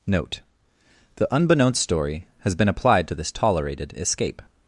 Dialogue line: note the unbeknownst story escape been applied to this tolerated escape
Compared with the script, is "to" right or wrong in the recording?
right